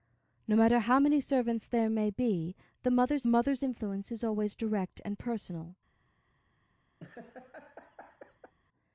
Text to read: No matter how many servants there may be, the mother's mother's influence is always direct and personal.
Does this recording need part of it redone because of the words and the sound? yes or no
yes